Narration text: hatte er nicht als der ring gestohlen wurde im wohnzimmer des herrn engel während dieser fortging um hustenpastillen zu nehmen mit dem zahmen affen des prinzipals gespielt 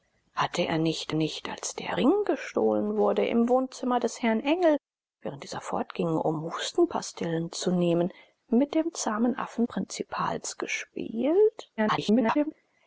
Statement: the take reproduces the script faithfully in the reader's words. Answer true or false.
false